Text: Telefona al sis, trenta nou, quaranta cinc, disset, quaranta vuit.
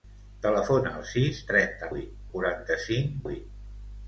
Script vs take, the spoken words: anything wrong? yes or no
yes